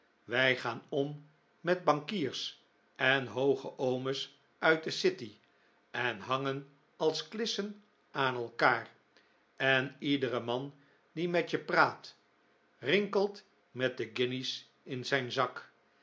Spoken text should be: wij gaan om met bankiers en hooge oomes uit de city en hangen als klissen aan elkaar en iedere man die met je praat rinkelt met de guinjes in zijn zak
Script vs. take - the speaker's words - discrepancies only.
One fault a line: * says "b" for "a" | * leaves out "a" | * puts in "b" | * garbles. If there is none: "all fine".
all fine